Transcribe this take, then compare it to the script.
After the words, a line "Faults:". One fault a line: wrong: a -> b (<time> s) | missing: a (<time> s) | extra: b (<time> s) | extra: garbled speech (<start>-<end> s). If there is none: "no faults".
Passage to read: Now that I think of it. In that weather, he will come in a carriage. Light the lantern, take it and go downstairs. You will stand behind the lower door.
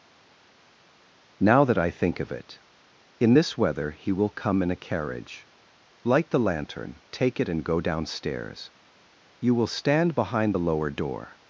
Now that I think of it. In this weather, he will come in a carriage. Light the lantern, take it and go downstairs. You will stand behind the lower door.
Faults:
wrong: that -> this (3.3 s)